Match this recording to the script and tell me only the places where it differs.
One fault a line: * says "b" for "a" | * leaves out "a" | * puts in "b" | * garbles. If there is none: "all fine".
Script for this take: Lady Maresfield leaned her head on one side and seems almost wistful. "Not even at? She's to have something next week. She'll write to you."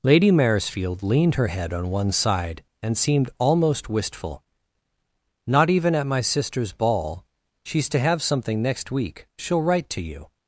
* says "seemed" for "seems"
* puts in "my sister's ball"